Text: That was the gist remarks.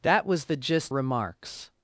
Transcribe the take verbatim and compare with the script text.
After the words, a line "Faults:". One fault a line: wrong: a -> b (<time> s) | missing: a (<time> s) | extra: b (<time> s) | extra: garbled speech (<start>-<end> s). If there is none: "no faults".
That was the gist remarks.
Faults:
no faults